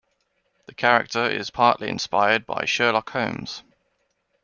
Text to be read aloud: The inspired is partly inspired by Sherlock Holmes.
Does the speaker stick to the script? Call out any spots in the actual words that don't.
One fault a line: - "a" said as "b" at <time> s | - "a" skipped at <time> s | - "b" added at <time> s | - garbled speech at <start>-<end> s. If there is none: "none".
- "inspired" said as "character" at 0.7 s